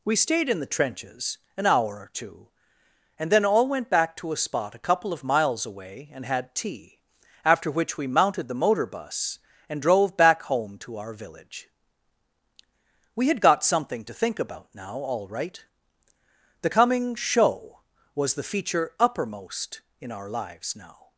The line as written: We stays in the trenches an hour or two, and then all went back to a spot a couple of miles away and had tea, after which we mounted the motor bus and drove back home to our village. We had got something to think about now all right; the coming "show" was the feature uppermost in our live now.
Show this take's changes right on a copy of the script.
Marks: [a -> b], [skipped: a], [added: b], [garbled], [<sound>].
We [stays -> stayed] in the trenches an hour or two, and then all went back to a spot a couple of miles away and had tea, after which we mounted the motor bus and drove back home to our village. We had got something to think about now all right; the coming "show" was the feature uppermost in our [live -> lives] now.